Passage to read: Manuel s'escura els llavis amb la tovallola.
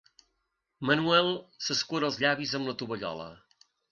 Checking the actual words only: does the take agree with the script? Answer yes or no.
yes